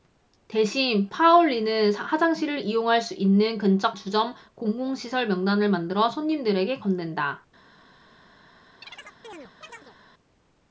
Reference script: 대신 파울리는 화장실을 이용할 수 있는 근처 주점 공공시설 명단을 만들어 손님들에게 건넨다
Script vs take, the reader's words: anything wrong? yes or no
no